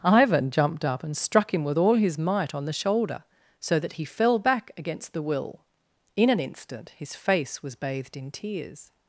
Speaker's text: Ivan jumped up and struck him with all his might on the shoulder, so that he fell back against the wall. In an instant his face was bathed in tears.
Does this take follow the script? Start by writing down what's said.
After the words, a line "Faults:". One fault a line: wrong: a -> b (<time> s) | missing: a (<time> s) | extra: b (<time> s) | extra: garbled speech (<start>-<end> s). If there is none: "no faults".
Ivan jumped up and struck him with all his might on the shoulder, so that he fell back against the will. In an instant his face was bathed in tears.
Faults:
wrong: wall -> will (5.2 s)